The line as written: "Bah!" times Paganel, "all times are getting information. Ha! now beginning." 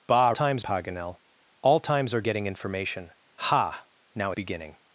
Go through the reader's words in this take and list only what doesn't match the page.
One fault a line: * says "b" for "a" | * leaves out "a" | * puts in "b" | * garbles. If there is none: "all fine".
all fine